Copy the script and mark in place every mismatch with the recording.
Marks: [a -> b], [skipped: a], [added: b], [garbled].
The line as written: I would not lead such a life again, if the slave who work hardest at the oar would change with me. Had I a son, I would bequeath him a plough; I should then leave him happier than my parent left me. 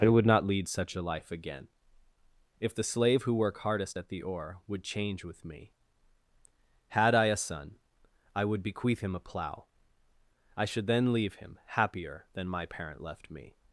I would not lead such a life again, if the slave who work hardest at the oar would change with me. Had I a son, I would bequeath him a plough; I should then leave him happier than my parent left me.